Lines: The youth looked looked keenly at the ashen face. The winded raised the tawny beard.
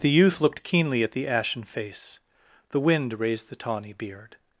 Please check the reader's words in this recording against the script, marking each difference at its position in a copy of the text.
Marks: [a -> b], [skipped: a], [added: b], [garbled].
The youth looked [skipped: looked] keenly at the ashen face. The [winded -> wind] raised the tawny beard.